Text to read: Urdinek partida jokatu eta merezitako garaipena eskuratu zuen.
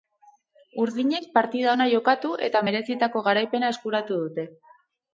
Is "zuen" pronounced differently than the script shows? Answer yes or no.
yes